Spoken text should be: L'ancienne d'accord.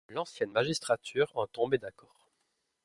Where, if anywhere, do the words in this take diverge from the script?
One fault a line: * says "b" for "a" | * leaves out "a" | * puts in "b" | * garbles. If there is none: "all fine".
* puts in "magistrature en tombait"